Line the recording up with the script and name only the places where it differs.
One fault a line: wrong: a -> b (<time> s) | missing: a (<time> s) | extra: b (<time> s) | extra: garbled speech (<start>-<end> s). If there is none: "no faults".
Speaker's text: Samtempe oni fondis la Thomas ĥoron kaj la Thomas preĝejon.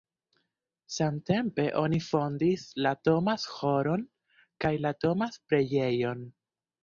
no faults